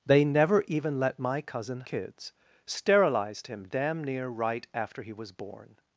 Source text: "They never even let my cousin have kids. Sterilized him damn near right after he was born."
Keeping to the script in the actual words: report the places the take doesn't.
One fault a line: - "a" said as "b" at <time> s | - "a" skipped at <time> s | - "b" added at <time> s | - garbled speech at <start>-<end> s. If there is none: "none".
- "have" skipped at 1.8 s